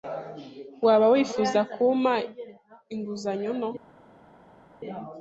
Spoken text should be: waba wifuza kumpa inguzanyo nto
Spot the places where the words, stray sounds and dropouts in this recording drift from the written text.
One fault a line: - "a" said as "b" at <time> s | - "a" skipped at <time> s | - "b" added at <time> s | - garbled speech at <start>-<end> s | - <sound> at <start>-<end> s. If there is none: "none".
none